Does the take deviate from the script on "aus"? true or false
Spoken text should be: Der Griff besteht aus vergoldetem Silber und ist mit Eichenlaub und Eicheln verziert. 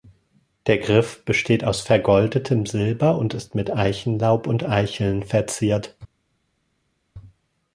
false